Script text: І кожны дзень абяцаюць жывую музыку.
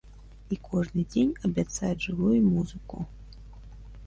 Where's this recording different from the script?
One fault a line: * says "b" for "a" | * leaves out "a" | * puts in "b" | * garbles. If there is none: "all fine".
all fine